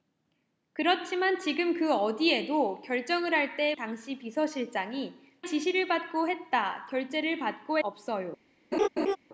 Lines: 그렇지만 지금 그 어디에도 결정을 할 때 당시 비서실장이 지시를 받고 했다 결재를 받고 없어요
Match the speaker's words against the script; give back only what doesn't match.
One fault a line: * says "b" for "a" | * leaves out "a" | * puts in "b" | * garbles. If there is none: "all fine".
all fine